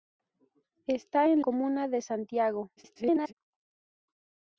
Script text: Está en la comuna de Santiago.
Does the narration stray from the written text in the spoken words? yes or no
yes